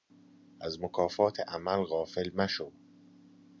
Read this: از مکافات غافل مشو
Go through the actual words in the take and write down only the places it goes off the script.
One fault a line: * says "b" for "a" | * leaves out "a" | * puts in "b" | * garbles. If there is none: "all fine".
* puts in "عمل"